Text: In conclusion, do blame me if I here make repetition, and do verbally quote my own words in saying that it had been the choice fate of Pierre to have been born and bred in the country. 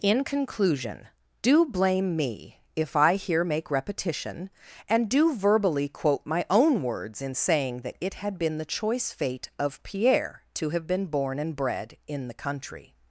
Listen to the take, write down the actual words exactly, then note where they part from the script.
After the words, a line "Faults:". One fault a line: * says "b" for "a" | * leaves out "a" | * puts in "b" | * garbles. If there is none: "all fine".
In conclusion, do blame me if I here make repetition, and do verbally quote my own words in saying that it had been the choice fate of Pierre to have been born and bred in the country.
Faults:
all fine